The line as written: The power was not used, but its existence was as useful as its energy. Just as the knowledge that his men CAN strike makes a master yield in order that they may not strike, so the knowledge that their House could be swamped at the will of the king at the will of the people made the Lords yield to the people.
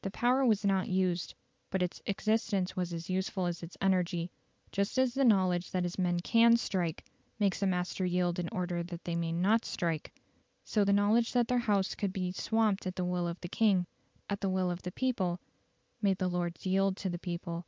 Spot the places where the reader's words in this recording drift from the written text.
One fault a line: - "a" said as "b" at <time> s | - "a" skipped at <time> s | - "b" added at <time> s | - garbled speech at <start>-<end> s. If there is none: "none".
none